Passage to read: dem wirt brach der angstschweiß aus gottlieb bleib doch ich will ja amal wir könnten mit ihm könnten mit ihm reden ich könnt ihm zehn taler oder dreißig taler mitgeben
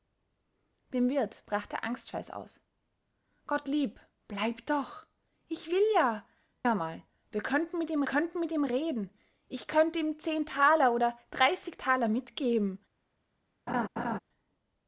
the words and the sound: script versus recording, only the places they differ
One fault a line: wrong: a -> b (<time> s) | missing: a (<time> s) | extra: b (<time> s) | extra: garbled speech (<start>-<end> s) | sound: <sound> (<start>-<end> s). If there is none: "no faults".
sound: laugh (13.7-14.2 s)